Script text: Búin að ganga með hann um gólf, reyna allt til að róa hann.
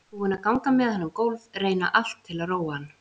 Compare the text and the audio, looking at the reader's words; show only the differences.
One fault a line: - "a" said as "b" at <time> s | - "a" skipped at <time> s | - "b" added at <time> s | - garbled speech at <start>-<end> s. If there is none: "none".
none